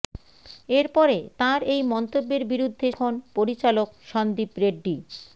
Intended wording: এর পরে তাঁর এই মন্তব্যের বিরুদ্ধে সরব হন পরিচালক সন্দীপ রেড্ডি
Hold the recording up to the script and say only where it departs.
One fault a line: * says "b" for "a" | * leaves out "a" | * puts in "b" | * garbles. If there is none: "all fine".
* leaves out "সরব"